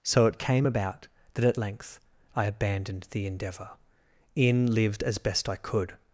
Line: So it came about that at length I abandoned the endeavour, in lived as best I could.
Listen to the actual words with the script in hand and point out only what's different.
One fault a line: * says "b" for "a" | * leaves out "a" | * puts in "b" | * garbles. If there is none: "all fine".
all fine